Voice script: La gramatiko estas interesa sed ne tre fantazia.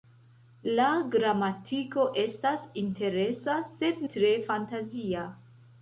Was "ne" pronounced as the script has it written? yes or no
no